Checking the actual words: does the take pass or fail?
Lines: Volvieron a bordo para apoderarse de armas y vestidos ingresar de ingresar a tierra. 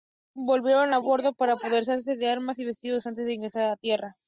fail